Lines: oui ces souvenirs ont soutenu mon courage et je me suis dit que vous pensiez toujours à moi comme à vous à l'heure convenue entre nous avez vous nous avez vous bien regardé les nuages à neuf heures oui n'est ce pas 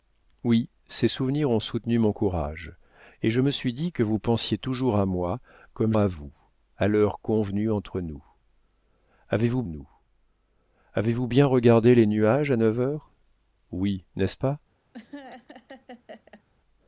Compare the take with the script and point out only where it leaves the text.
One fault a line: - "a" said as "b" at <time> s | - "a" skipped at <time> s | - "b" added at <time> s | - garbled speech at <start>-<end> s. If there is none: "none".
none